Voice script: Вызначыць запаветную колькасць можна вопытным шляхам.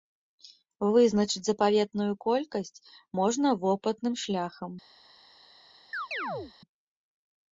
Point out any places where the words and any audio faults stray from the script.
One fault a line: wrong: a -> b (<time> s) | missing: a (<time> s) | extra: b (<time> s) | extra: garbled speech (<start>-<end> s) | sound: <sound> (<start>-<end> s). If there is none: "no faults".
sound: chirp (5.9-6.5 s)